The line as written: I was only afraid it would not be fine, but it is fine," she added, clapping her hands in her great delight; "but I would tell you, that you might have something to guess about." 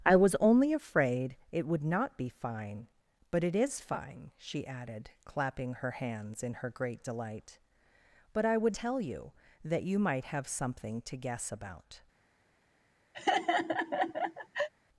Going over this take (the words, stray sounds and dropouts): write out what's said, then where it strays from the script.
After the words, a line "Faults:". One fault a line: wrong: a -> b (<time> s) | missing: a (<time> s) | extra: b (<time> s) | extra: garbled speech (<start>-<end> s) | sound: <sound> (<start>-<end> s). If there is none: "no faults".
I was only afraid it would not be fine, but it is fine," she added, clapping her hands in her great delight; "but I would tell you, that you might have something to guess about."
Faults:
sound: laugh (13.1-14.7 s)